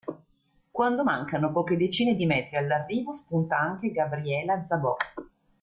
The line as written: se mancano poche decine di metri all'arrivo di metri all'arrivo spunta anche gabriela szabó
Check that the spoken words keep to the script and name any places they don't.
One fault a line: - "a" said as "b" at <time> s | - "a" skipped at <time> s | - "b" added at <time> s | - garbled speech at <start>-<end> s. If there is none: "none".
- "se" said as "quando" at 0.7 s
- "di metri all'arrivo" skipped at 3.1 s